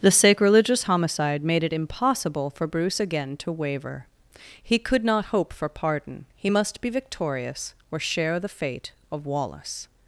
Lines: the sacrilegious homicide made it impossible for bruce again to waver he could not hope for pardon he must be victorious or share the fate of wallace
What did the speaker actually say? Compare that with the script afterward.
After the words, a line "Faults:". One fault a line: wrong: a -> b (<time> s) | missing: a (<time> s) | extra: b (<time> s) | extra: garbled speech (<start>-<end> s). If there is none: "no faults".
the sacrilegious homicide made it impossible for bruce again to waver he could not hope for pardon he must be victorious or share the fate of wallace
Faults:
no faults